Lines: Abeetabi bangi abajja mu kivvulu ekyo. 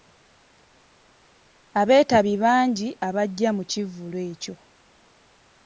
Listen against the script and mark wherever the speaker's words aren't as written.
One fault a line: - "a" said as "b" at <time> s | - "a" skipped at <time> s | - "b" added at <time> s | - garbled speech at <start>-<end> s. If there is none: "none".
none